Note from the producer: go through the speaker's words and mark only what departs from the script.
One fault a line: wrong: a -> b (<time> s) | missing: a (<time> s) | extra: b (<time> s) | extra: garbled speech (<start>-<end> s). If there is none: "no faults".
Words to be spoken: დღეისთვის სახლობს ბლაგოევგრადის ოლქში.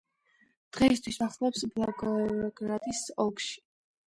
no faults